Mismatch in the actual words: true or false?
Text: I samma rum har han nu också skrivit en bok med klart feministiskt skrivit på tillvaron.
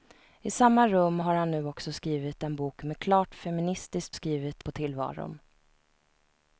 false